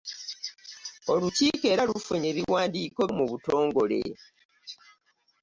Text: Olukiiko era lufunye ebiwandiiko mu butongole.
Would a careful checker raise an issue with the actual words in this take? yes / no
no